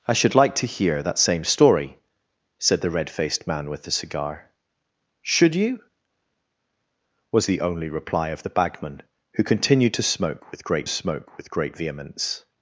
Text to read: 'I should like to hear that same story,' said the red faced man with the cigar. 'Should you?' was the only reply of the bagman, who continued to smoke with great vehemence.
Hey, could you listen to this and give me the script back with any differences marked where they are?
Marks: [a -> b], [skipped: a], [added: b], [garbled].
'I should like to hear that same story,' said the red faced man with the cigar. 'Should you?' was the only reply of the bagman, who continued to smoke with great [added: smoke with great] vehemence.